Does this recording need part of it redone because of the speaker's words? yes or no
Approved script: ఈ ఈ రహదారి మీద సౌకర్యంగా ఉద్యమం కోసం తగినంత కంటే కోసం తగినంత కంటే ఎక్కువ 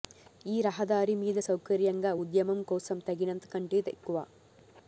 yes